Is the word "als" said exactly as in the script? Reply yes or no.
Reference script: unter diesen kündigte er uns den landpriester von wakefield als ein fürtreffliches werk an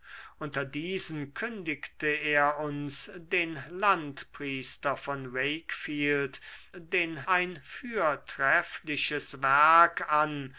no